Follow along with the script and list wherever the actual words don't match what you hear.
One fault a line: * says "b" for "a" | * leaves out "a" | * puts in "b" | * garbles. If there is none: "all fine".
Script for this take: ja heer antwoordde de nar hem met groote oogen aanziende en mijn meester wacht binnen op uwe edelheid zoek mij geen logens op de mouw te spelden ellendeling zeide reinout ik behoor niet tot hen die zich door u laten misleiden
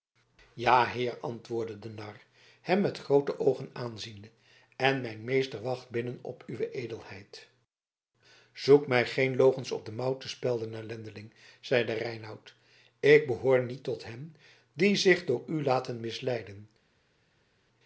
all fine